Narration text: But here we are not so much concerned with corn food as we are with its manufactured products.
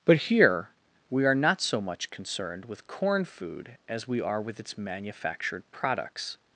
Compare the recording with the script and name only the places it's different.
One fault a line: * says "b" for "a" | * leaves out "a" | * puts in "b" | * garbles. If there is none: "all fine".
all fine